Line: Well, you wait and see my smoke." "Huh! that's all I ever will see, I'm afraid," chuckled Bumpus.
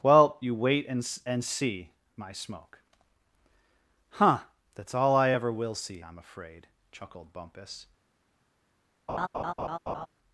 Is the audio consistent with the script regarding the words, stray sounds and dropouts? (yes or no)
no